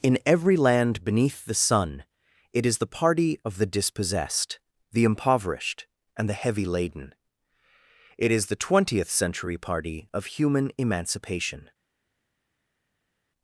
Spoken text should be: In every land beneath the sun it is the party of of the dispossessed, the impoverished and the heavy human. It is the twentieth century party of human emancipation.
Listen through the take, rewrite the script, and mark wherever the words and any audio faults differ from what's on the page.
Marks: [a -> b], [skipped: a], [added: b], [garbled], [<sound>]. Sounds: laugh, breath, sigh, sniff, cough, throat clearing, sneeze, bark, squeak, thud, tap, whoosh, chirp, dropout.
In every land beneath the sun it is the party of [skipped: of] the dispossessed, the impoverished and the heavy [human. -> laden] It is the twentieth century party of human emancipation.